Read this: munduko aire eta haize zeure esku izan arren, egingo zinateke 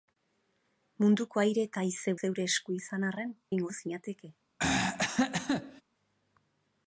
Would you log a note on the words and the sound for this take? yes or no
yes